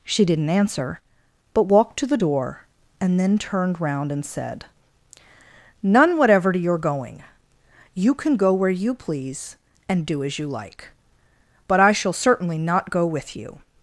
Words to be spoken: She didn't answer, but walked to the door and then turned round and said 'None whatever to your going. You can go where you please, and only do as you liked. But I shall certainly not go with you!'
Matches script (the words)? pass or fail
fail